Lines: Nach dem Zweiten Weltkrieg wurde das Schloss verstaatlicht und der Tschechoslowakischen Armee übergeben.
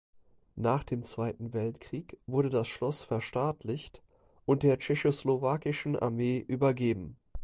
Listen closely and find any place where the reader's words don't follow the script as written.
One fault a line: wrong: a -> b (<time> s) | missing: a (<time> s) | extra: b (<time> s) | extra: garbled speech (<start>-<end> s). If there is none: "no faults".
no faults